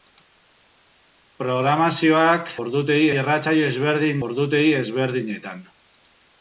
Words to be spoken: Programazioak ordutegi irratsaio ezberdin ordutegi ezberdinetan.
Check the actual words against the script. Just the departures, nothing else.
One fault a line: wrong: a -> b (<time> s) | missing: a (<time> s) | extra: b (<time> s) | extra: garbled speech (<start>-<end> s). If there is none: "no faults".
no faults